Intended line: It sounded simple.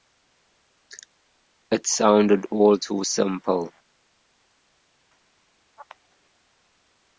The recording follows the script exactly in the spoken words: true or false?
false